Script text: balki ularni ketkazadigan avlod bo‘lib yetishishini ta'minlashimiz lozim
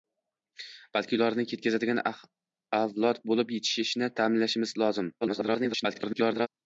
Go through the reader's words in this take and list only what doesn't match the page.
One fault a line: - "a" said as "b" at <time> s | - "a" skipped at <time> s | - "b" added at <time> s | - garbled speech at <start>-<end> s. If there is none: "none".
- garbled speech at 5.2-6.5 s